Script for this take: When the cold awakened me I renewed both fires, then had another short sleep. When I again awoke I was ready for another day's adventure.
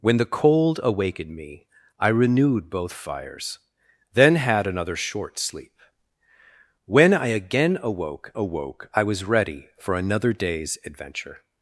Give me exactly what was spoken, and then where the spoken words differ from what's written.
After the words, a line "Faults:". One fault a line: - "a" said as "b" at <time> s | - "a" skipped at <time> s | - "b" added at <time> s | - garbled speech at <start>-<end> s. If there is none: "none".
When the cold awakened me I renewed both fires, then had another short sleep. When I again awoke awoke I was ready for another day's adventure.
Faults:
- "awoke" added at 8.4 s